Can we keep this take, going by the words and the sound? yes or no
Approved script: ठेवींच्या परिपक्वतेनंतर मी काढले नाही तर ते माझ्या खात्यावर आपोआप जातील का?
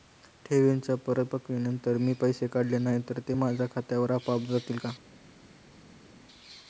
no